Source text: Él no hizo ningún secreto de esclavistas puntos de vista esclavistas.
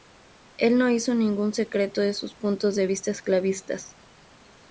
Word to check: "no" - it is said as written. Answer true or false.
true